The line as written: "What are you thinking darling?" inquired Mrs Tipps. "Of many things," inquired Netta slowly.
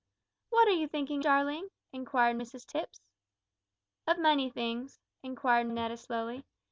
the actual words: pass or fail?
pass